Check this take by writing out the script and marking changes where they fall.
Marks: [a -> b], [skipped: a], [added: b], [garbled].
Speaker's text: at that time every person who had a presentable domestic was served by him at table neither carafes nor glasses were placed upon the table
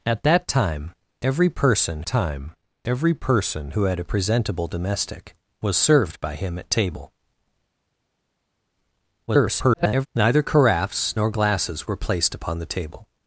at that time every person [added: time every person] who had a presentable domestic was served by him at table [garbled] neither carafes nor glasses were placed upon the table